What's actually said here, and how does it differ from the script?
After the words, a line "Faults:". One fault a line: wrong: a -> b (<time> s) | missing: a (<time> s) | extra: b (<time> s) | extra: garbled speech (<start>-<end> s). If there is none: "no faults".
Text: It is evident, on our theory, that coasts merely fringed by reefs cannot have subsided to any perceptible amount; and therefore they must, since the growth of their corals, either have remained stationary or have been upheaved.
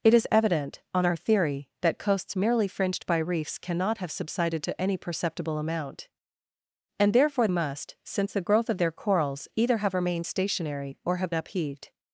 It is evident, on our theory, that coasts merely fringed by reefs cannot have subsided to any perceptible amount; and therefore must, since the growth of their corals, either have remained stationary or have upheaved.
Faults:
missing: they (7.5 s)
missing: been (11.3 s)